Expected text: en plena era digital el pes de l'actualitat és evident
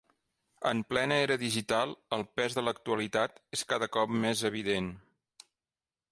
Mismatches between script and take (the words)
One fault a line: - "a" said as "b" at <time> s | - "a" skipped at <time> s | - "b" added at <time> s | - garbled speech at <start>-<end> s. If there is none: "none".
- "cada cop més" added at 3.7 s